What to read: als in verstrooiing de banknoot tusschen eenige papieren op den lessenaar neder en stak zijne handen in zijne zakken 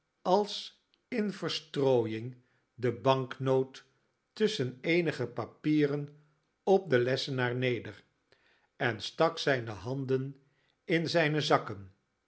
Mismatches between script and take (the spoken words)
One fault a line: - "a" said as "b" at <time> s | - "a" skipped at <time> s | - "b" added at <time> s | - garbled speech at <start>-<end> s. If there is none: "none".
none